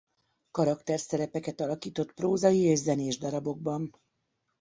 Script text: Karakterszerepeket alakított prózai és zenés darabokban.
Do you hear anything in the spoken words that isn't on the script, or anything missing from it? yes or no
no